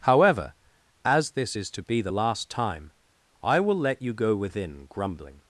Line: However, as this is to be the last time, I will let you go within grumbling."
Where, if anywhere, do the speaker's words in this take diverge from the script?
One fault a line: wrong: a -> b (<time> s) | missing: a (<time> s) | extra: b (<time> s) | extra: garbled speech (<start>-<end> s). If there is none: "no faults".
no faults